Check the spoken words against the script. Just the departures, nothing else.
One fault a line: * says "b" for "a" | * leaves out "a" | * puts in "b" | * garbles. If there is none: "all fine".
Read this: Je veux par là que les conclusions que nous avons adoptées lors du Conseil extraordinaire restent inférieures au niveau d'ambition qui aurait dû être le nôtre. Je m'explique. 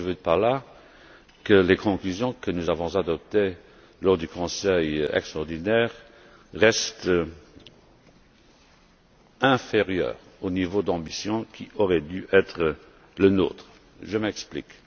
all fine